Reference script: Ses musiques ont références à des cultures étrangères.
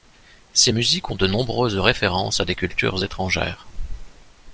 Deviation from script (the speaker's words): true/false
true